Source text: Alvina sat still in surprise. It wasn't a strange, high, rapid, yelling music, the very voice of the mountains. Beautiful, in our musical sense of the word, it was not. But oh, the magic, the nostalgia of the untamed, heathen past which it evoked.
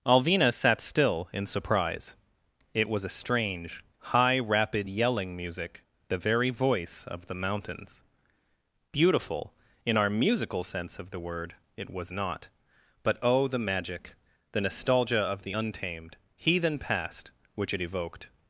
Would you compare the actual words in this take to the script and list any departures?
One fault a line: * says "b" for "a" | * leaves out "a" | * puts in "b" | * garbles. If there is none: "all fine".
* says "was" for "wasn't"